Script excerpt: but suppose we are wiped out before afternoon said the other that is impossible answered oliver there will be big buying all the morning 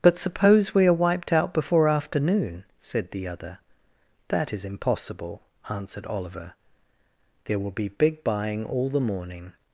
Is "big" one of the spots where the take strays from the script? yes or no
no